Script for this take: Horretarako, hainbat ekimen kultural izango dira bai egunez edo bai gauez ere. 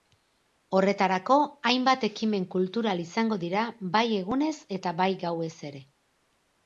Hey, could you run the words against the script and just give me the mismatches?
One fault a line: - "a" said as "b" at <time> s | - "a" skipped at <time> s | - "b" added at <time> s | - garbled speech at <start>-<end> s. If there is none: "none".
- "edo" said as "eta" at 4.8 s